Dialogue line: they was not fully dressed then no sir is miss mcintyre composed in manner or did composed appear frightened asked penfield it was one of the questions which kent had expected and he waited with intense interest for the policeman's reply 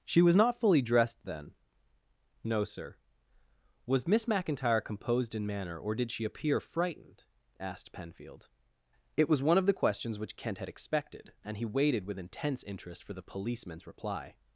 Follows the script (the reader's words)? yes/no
no